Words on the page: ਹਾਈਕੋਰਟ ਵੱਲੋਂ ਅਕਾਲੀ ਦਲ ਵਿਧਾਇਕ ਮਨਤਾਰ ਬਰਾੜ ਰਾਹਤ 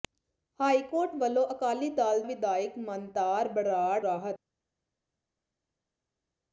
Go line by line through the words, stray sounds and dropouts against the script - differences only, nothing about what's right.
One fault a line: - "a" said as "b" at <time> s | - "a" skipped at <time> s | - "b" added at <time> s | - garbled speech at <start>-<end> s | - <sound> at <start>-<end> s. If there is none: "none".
none